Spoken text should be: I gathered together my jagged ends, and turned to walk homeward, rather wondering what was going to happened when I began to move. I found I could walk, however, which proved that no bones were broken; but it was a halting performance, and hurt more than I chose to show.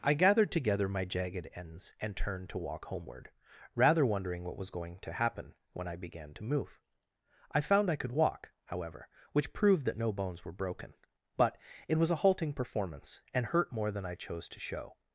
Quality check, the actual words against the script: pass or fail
fail